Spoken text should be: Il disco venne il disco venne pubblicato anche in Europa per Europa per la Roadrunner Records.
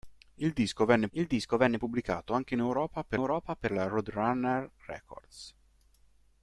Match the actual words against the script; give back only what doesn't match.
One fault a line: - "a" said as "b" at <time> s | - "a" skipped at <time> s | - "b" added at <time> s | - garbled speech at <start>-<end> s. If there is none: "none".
none